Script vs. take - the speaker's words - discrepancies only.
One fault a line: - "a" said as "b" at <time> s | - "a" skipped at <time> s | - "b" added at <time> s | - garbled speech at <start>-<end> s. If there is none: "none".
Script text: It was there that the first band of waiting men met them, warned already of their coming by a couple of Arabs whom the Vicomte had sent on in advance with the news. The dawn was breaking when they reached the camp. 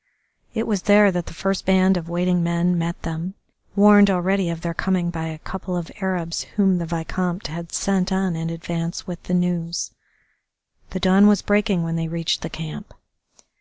none